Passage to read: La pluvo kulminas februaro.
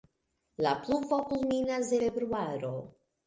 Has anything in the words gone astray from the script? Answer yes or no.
no